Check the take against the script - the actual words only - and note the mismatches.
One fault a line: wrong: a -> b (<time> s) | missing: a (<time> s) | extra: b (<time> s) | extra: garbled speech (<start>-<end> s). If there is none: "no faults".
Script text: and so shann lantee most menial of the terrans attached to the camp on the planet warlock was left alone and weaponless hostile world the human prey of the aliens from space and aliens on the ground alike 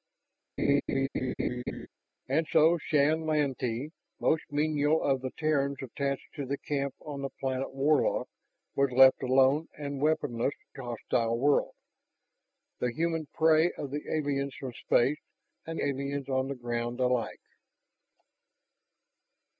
no faults